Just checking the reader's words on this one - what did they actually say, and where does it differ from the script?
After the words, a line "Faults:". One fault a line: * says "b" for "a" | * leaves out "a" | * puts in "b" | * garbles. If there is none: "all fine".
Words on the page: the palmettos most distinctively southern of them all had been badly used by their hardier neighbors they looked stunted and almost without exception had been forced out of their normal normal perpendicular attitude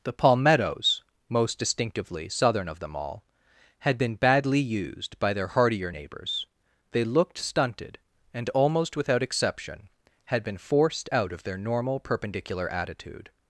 the palmettos most distinctively southern of them all had been badly used by their hardier neighbors they looked stunted and almost without exception had been forced out of their normal perpendicular attitude
Faults:
* leaves out "normal"